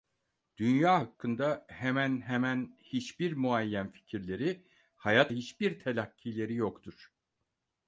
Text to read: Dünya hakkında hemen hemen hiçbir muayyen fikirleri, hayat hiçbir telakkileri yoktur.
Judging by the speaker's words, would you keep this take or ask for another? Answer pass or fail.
pass